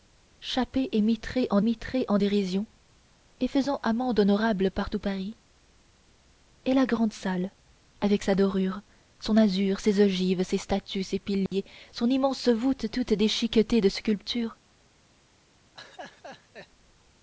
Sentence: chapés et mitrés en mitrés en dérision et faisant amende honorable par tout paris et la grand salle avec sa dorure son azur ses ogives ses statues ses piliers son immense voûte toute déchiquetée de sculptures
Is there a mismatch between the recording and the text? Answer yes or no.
no